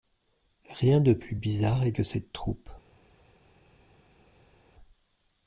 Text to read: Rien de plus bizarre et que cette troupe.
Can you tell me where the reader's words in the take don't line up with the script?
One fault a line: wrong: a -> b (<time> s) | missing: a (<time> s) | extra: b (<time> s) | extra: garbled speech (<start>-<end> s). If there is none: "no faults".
no faults